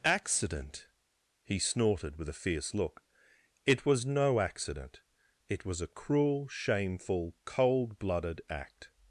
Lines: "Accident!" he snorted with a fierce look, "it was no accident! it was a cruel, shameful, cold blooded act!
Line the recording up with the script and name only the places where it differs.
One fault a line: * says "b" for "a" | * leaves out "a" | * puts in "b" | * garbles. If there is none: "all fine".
all fine